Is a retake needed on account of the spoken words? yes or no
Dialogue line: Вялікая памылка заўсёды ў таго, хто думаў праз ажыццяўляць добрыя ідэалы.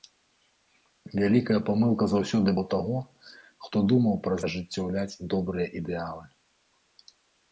no